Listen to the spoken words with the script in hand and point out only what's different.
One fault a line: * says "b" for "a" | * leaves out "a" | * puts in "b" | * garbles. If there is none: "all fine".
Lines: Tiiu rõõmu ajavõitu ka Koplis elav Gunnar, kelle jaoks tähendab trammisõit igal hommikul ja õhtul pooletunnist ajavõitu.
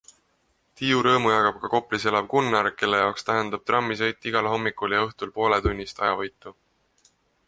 * says "jagab" for "ajavõitu"